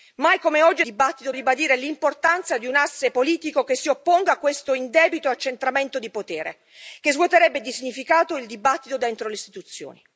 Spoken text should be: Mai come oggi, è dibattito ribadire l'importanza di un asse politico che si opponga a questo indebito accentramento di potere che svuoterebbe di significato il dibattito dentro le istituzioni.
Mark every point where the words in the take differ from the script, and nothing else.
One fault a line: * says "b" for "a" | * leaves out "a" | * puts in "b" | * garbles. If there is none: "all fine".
all fine